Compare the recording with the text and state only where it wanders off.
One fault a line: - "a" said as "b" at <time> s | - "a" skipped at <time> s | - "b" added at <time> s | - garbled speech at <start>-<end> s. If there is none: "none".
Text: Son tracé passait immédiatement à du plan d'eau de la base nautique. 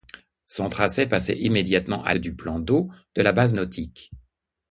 none